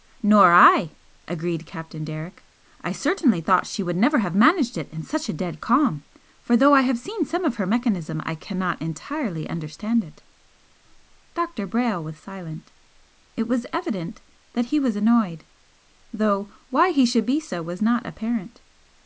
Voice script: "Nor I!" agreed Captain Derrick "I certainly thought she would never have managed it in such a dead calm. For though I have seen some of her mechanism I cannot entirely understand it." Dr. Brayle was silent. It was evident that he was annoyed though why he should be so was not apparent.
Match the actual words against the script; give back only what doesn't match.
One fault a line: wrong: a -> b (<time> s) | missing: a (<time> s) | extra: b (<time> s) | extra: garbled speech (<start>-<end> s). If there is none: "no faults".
no faults